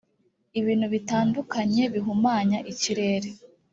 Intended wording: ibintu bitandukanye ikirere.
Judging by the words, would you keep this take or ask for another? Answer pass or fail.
fail